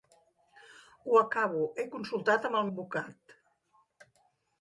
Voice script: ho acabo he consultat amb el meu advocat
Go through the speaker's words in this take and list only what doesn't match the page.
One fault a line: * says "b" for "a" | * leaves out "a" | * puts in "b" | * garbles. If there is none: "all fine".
* leaves out "meu"